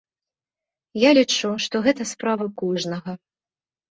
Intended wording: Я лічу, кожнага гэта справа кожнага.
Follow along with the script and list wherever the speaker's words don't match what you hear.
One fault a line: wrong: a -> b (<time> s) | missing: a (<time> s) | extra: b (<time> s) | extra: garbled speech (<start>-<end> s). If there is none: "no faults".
wrong: кожнага -> што (1.6 s)